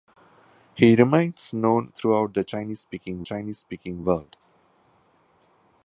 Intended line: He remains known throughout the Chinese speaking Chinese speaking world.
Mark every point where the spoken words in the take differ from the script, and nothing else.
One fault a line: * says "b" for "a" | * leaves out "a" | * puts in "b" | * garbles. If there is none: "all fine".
all fine